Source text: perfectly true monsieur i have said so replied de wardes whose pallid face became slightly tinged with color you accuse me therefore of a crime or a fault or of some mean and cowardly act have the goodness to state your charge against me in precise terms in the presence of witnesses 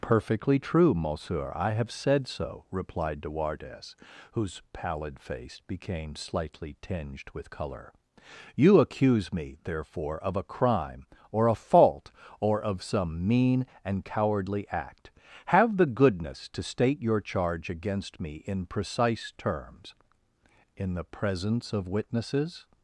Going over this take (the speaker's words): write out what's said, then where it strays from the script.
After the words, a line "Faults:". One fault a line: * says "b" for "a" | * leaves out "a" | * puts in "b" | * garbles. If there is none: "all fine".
perfectly true monsieur i have said so replied de wardes whose pallid face became slightly tinged with color you accuse me therefore of a crime or a fault or of some mean and cowardly act have the goodness to state your charge against me in precise terms in the presence of witnesses
Faults:
all fine